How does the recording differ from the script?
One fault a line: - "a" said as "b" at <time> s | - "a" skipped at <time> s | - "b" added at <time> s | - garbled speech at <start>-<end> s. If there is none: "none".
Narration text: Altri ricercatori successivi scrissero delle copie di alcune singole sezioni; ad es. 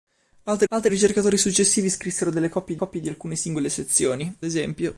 - "altri" added at 0.7 s
- "copie" added at 2.7 s
- "ad" skipped at 4.3 s